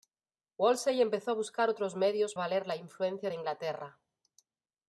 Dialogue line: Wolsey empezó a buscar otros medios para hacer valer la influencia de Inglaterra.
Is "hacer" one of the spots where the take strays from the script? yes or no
yes